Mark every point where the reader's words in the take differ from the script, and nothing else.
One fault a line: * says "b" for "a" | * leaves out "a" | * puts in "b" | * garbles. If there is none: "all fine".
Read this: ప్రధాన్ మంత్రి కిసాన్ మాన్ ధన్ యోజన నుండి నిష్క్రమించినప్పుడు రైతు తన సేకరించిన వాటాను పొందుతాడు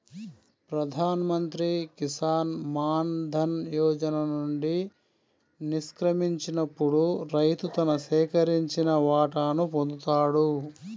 all fine